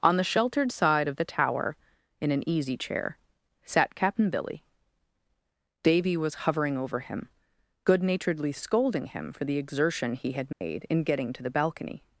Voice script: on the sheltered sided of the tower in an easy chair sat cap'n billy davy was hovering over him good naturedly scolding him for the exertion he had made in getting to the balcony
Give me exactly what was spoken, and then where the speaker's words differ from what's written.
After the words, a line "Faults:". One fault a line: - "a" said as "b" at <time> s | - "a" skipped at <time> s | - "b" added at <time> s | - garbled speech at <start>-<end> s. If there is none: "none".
on the sheltered side of the tower in an easy chair sat cap'n billy davy was hovering over him good naturedly scolding him for the exertion he had made in getting to the balcony
Faults:
- "sided" said as "side" at 0.7 s